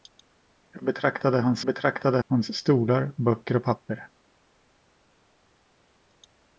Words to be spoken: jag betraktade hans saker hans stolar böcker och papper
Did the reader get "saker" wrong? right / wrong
wrong